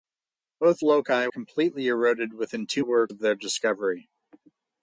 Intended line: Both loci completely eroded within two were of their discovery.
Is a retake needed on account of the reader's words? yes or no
no